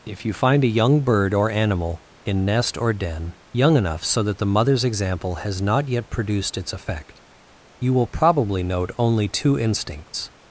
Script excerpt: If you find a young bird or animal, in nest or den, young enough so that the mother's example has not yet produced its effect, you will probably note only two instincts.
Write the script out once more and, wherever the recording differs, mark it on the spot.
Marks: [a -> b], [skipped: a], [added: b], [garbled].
If you find a young bird or animal, in nest or den, young enough so that the mother's example has not yet produced its effect, you will probably note only two instincts.